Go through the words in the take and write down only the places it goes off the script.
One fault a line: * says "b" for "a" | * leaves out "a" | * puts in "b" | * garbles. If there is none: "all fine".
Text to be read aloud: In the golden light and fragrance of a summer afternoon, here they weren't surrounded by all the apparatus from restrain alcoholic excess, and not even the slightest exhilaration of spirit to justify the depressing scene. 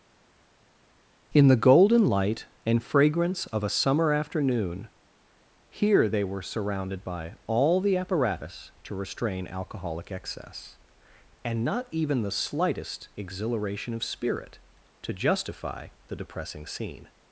* says "were" for "weren't"
* says "to" for "from"